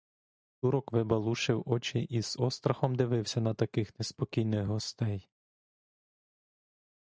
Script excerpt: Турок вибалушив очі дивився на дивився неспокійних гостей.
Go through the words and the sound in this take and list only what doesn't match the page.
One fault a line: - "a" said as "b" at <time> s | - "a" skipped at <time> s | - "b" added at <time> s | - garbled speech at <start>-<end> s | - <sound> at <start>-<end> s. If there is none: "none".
- "і з острахом" added at 2.0 s
- "дивився" said as "таких" at 3.5 s